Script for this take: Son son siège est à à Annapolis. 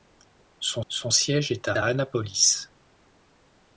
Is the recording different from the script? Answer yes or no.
no